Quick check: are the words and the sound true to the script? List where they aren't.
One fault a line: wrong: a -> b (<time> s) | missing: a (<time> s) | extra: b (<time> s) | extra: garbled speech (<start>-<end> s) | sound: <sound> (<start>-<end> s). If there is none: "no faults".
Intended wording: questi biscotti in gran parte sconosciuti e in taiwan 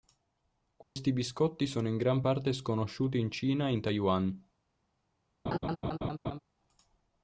sound: dropout (0.8-1.0 s)
extra: sono (1.7 s)
extra: in cina (3.2 s)
sound: laugh (5.5-6.4 s)